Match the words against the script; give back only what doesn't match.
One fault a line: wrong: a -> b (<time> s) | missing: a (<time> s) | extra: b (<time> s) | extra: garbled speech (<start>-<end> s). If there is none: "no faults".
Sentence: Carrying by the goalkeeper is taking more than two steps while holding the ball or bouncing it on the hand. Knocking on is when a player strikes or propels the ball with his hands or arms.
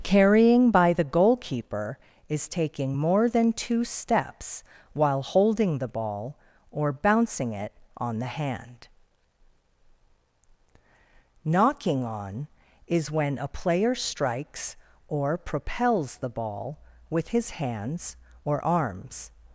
no faults